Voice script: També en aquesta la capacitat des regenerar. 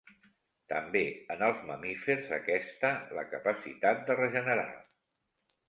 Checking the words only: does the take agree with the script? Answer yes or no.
no